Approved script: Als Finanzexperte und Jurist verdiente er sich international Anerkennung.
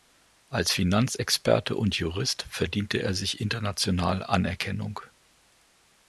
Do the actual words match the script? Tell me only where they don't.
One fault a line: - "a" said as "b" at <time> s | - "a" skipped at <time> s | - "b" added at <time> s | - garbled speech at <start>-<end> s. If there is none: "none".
none